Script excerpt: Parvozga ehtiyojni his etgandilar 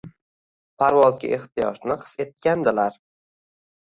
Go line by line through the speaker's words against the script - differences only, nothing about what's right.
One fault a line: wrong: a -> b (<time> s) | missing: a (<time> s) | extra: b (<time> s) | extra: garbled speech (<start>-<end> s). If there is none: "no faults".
no faults